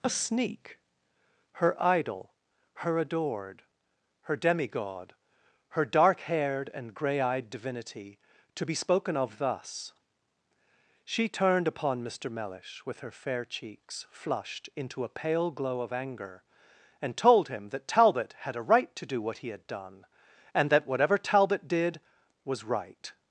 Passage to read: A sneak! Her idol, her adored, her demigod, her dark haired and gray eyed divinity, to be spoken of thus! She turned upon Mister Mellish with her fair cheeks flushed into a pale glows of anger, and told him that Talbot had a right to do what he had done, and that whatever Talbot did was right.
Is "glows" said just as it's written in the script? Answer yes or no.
no